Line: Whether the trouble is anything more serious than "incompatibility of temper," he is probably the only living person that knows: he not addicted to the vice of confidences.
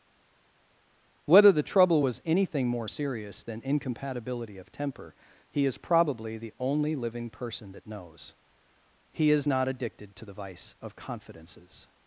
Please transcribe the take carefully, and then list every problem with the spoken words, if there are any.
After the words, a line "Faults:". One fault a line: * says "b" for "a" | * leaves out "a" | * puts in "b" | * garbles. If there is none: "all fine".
Whether the trouble was anything more serious than "incompatibility of temper," he is probably the only living person that knows: he is not addicted to the vice of confidences.
Faults:
* says "was" for "is"
* puts in "is"